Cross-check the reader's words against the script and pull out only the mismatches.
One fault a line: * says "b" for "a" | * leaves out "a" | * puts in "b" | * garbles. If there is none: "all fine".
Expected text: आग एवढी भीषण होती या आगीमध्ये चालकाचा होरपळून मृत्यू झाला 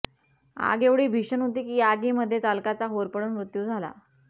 * puts in "की"